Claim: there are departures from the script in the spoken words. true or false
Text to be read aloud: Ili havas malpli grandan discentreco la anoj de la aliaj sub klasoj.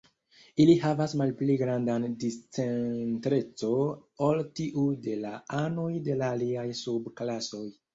true